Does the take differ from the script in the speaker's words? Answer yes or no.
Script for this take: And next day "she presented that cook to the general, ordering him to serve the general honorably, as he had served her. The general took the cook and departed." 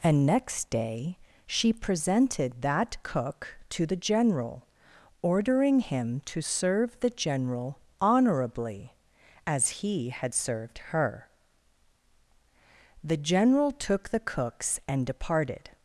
yes